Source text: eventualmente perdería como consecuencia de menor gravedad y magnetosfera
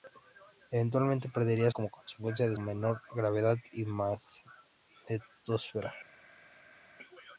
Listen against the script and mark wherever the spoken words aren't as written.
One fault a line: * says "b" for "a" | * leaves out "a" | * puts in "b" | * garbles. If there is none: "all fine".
all fine